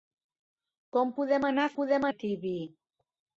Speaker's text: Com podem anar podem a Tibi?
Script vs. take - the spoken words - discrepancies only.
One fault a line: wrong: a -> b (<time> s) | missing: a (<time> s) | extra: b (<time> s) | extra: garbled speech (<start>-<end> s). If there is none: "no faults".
no faults